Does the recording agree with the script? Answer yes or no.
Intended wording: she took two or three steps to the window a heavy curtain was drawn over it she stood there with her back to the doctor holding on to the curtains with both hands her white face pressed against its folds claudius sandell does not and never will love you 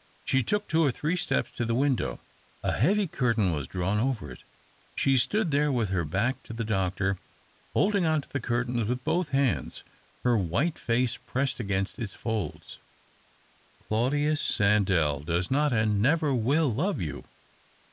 yes